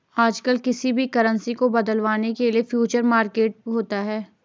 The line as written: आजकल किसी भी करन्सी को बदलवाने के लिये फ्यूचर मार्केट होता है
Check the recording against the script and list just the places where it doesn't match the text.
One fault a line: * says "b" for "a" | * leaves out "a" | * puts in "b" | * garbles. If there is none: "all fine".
all fine